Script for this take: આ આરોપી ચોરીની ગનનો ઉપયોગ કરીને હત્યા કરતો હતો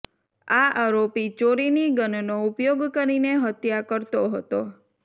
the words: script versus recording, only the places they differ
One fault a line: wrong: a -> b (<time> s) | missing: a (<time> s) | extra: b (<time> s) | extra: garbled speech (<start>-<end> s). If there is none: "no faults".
no faults